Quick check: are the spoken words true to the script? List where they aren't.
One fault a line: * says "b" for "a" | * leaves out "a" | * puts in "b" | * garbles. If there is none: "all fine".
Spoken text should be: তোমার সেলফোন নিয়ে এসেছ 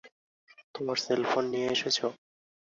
all fine